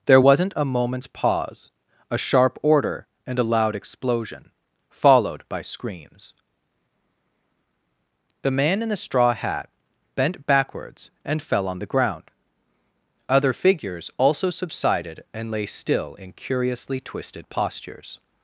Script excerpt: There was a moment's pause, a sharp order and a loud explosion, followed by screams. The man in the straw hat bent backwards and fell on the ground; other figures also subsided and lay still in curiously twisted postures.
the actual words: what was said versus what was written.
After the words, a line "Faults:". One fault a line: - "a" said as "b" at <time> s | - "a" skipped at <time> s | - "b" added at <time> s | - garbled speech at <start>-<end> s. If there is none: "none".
There wasn't a moment's pause, a sharp order and a loud explosion, followed by screams. The man in the straw hat bent backwards and fell on the ground; other figures also subsided and lay still in curiously twisted postures.
Faults:
- "was" said as "wasn't" at 0.2 s